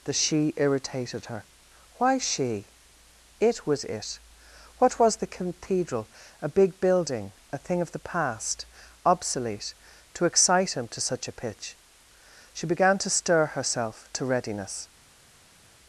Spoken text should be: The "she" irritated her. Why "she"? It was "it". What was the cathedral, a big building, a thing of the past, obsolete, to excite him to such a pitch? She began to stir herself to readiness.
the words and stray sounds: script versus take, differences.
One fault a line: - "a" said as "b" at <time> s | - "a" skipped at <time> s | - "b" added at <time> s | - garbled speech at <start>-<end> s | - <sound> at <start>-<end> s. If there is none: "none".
none